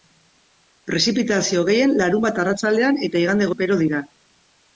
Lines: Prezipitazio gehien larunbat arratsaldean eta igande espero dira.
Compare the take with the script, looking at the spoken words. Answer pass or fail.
pass